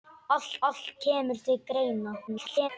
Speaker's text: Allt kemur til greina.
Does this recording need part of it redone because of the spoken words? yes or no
yes